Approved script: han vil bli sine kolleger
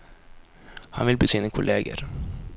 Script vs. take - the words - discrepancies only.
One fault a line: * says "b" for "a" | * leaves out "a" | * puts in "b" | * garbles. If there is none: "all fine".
all fine